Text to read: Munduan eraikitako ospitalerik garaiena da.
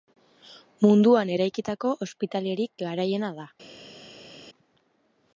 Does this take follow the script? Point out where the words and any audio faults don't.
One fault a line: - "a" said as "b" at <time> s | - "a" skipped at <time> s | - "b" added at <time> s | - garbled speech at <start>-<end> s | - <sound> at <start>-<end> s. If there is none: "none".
none